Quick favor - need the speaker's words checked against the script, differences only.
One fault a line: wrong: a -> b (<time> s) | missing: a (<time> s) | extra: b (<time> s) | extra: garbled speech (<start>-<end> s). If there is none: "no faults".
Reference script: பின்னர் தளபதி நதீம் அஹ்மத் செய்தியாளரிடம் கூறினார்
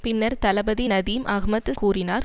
missing: செய்தியாளரிடம் (1.7 s)